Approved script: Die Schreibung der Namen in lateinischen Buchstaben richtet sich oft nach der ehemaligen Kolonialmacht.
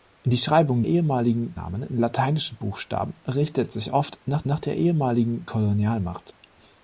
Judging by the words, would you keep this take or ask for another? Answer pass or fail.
fail